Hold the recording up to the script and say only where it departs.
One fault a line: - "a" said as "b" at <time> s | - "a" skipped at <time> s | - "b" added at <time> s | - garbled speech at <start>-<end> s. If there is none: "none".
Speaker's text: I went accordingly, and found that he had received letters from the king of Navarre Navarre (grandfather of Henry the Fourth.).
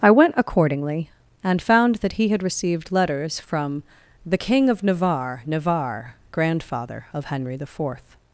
none